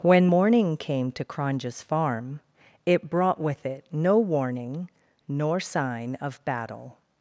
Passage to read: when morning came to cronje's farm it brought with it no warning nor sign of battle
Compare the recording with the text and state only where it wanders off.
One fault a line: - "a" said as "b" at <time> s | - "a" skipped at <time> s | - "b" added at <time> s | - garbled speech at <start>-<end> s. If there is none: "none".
none